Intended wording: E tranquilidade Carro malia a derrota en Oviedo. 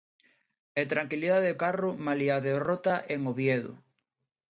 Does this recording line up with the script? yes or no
yes